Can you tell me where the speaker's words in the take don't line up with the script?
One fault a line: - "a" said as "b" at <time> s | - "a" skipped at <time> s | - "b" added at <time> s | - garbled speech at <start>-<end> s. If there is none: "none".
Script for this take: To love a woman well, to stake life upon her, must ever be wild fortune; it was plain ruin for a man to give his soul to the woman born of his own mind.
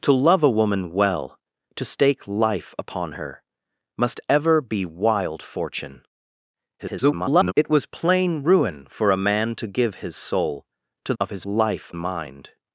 - garbled speech at 6.8-7.5 s
- "the woman born" skipped at 11.1 s
- "own" said as "life" at 11.4 s